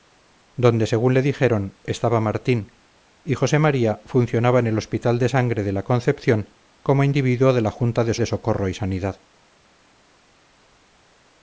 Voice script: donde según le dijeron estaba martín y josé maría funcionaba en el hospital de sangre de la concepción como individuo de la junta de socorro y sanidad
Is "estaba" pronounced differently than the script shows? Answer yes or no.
no